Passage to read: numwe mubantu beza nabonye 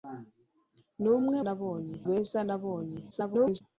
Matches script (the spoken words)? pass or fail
fail